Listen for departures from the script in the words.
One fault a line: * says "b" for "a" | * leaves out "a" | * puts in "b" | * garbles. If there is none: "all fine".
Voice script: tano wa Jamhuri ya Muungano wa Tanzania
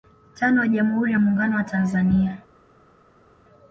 all fine